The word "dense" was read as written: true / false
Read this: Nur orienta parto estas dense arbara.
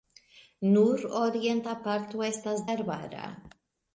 false